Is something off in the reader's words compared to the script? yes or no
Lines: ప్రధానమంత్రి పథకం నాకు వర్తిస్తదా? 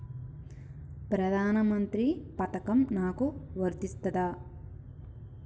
no